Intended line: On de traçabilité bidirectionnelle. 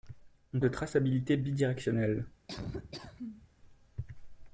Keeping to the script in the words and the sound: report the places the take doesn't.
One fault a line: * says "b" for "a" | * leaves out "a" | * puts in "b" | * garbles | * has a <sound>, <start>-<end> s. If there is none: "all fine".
* has a laugh, 2.5-3.5 s